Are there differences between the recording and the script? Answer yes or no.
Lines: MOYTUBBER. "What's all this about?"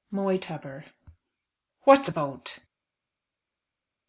yes